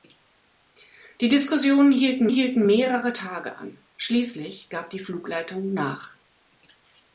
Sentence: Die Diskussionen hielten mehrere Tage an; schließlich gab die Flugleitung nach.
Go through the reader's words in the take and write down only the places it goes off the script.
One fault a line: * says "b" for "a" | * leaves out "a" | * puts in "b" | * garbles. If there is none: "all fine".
* puts in "hielten"